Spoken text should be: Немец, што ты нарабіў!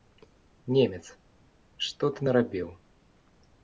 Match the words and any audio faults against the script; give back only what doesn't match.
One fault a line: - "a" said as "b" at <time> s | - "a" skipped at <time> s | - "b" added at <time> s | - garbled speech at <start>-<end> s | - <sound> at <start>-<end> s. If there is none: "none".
none